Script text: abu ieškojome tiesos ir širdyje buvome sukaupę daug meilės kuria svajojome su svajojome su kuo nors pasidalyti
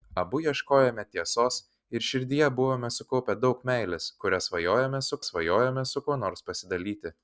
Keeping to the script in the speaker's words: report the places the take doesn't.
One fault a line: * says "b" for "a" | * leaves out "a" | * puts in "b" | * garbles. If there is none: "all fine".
all fine